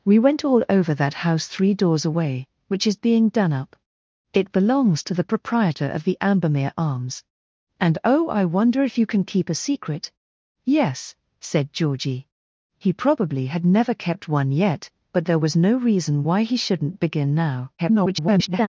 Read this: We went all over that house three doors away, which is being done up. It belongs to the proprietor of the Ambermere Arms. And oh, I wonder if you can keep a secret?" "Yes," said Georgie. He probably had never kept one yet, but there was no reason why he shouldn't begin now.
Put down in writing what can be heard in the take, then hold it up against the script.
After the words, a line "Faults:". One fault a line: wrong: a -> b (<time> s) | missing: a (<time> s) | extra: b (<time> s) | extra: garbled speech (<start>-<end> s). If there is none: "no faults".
We went all over that house three doors away, which is being done up. It belongs to the proprietor of the Ambermere Arms. And oh, I wonder if you can keep a secret?" "Yes," said Georgie. He probably had never kept one yet, but there was no reason why he shouldn't begin now. [garbled]
Faults:
extra: garbled speech (17.8-18.7 s)